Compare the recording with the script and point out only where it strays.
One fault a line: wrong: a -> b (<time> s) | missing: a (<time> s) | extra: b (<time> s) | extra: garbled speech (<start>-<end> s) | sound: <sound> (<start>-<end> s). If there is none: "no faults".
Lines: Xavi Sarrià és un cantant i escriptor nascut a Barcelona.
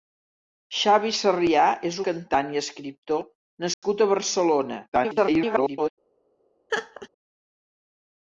missing: un (2.0 s)
sound: dropout (3.7-3.8 s)
extra: garbled speech (4.9-5.9 s)
sound: laugh (6.7-7.1 s)